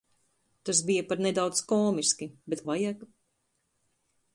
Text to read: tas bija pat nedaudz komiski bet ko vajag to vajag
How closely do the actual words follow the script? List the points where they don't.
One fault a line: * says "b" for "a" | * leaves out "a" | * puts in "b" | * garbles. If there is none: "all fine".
* leaves out "ko vajag to"